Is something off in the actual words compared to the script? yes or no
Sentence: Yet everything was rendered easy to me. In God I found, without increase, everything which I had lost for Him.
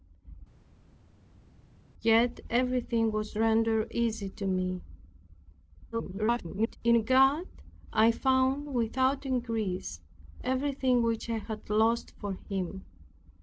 yes